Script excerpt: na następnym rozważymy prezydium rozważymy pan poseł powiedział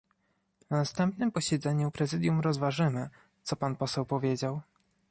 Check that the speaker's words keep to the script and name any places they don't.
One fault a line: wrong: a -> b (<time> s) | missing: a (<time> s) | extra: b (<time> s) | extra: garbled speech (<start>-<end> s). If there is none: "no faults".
wrong: rozważymy -> posiedzeniu (1.3 s)
extra: co (3.4 s)